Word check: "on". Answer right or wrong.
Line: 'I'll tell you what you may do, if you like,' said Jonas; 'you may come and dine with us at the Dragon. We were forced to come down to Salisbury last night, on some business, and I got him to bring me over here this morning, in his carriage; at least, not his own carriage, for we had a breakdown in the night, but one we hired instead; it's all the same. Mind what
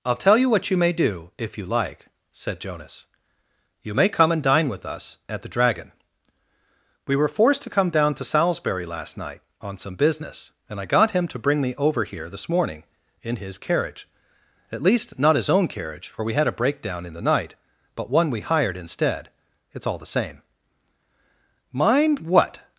right